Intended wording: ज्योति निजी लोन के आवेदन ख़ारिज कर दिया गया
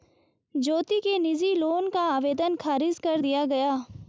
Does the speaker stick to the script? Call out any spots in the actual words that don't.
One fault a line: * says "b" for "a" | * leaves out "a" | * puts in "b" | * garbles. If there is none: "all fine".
* puts in "के"
* says "का" for "के"